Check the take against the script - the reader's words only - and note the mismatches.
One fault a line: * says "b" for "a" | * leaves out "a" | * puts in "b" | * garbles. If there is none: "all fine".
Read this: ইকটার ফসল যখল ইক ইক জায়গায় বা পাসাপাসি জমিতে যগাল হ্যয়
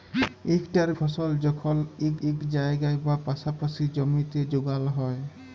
all fine